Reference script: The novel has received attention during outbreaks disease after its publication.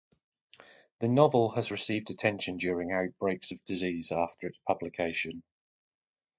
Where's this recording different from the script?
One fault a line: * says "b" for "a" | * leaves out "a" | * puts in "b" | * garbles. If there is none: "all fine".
* puts in "of"